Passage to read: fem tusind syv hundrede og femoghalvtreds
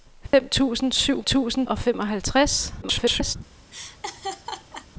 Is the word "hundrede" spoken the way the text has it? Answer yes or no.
no